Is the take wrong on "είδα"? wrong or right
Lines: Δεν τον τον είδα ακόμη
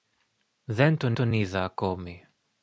right